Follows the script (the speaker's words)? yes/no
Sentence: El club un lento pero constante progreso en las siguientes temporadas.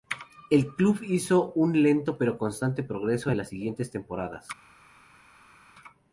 no